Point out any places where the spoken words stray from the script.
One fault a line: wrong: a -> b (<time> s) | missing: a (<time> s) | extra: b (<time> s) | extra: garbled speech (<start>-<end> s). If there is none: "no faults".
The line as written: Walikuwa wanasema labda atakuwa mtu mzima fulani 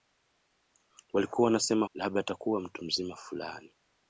no faults